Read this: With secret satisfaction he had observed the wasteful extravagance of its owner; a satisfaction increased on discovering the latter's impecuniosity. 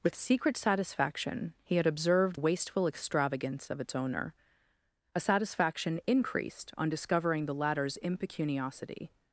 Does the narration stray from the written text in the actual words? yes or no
yes